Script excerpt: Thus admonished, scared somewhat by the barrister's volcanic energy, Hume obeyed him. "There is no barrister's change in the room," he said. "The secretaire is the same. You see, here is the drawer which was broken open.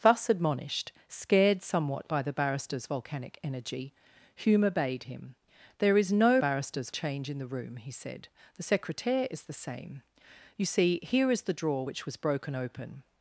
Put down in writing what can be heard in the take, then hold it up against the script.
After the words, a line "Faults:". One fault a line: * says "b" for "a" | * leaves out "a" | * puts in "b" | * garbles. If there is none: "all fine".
Thus admonished, scared somewhat by the barrister's volcanic energy, Hume obeyed him. "There is no barrister's change in the room," he said. "The secretaire is the same. You see, here is the drawer which was broken open.
Faults:
all fine